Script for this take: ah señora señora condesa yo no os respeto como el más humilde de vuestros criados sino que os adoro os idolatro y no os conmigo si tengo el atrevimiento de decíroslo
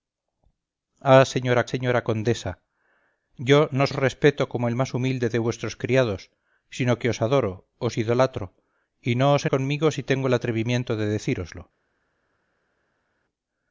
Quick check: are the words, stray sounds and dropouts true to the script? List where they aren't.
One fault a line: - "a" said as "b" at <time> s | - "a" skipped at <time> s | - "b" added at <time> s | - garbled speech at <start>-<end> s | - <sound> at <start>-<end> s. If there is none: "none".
none